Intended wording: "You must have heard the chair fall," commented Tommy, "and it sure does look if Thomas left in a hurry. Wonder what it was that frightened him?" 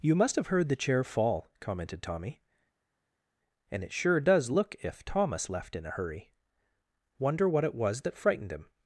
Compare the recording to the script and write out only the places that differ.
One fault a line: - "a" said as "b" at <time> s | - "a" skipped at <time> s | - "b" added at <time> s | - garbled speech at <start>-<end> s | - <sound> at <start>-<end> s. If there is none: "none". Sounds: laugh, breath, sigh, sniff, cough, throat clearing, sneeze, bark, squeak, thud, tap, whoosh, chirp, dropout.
none